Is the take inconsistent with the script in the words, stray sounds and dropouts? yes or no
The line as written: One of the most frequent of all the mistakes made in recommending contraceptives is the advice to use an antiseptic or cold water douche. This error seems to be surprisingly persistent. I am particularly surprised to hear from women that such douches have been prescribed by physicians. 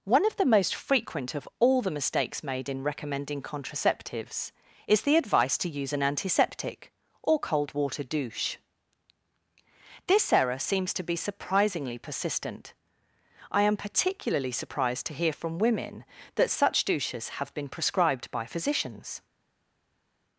no